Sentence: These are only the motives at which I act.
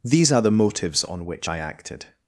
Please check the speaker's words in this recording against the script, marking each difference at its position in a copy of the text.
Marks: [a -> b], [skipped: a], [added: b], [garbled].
These are [skipped: only] the motives [at -> on] which I [act. -> acted]